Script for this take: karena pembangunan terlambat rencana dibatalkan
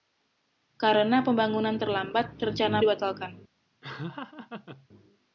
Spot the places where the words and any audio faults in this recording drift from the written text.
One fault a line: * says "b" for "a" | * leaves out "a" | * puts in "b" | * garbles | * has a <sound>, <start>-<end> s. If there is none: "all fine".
* has a laugh, 3.8-4.9 s